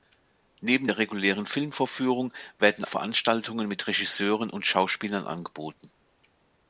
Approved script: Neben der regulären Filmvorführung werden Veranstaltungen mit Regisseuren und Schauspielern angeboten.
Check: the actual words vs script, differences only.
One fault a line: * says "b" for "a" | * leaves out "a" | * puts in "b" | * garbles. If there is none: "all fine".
all fine